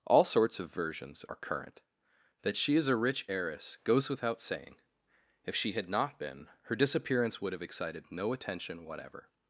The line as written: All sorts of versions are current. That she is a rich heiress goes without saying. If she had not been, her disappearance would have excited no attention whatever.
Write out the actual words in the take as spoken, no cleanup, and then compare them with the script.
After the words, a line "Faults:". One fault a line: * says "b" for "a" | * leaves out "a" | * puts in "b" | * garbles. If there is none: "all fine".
All sorts of versions are current. That she is a rich heiress goes without saying. If she had not been, her disappearance would have excited no attention whatever.
Faults:
all fine